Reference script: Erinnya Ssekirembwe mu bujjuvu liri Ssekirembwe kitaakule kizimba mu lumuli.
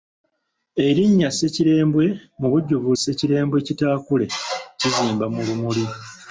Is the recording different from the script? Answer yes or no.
yes